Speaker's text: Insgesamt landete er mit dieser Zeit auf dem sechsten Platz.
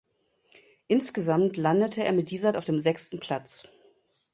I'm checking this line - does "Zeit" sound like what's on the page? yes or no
no